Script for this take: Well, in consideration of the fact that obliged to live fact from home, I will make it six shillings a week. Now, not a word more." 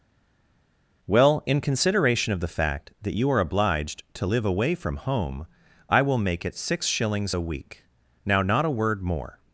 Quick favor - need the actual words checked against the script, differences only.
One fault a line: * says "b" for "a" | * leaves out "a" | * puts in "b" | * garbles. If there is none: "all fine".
* puts in "you are"
* says "away" for "fact"